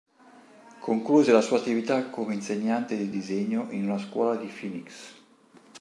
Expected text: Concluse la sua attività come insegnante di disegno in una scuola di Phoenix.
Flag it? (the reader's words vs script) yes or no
no